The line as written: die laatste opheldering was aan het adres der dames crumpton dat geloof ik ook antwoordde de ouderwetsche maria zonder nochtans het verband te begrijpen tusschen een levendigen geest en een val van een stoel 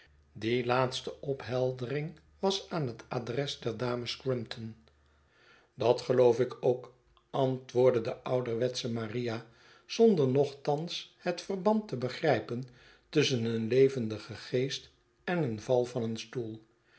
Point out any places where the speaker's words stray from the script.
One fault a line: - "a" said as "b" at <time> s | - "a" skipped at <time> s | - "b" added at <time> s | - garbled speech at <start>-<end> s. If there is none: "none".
none